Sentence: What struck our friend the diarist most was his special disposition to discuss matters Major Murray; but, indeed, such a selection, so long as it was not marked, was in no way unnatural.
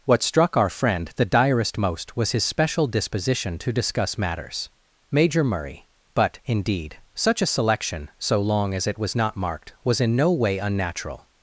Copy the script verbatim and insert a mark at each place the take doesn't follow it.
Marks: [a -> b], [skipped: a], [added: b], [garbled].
What struck our friend the diarist most was his special disposition to discuss matters Major Murray; but, indeed, such a selection, so long as it was not marked, was in no way unnatural.